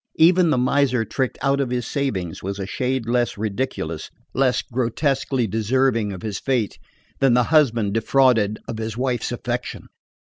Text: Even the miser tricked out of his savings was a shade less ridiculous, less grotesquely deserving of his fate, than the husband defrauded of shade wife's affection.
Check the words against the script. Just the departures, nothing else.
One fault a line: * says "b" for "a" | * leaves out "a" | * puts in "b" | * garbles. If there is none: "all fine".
* says "his" for "shade"